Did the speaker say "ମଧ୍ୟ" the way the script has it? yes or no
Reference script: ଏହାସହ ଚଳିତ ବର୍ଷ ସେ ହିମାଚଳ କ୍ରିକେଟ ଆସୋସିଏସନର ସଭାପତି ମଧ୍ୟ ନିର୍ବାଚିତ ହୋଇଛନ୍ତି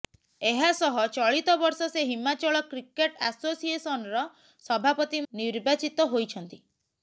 no